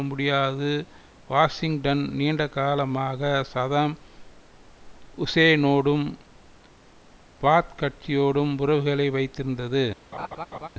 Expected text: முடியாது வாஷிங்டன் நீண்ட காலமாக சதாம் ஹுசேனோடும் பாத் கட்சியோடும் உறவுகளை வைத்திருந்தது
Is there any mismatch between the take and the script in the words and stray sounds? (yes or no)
yes